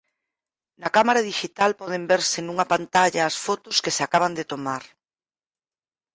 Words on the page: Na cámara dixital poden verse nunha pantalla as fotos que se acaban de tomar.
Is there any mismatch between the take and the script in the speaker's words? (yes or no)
no